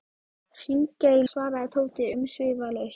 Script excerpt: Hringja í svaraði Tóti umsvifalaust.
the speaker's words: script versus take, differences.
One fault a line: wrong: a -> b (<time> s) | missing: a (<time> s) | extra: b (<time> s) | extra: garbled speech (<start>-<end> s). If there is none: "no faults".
no faults